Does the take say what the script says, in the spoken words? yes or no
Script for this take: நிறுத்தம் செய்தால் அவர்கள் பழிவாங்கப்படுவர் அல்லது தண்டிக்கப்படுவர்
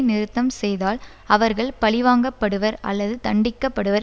yes